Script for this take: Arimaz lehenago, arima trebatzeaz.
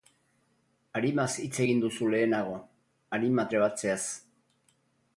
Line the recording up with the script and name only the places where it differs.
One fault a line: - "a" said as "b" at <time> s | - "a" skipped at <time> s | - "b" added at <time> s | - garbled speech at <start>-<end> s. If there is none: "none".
- "hitz egin duzu" added at 1.4 s